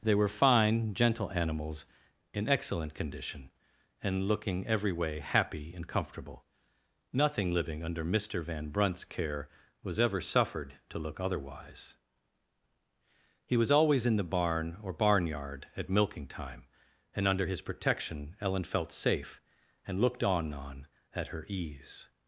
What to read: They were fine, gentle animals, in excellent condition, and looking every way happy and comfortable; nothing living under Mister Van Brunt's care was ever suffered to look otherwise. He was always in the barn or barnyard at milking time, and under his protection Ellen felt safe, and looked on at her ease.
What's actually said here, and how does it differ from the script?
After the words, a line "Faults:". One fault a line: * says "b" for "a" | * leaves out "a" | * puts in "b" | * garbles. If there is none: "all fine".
They were fine, gentle animals, in excellent condition, and looking every way happy and comfortable; nothing living under Mister Van Brunt's care was ever suffered to look otherwise. He was always in the barn or barnyard at milking time, and under his protection Ellen felt safe, and looked on on at her ease.
Faults:
* puts in "on"